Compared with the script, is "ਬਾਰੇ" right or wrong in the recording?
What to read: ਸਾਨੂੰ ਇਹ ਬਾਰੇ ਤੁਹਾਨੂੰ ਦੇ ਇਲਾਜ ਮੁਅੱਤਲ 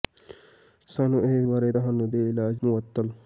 right